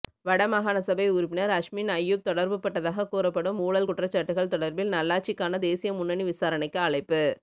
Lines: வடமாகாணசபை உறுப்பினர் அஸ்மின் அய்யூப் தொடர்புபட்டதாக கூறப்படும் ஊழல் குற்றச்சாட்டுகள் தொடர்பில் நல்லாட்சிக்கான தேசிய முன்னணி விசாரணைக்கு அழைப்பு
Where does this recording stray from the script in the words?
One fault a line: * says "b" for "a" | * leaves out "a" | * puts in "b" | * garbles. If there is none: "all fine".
all fine